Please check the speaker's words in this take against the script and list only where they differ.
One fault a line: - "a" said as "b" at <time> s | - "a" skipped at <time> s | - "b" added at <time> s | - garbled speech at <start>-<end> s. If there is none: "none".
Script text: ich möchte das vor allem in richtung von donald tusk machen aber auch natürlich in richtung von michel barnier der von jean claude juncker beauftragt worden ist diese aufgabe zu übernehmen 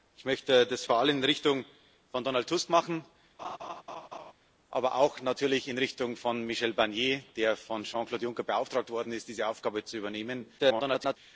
- garbled speech at 10.6-11.2 s